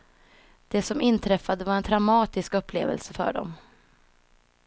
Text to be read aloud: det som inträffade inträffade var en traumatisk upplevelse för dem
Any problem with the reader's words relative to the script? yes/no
yes